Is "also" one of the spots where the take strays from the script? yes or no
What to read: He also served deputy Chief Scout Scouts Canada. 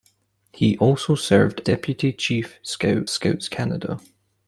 no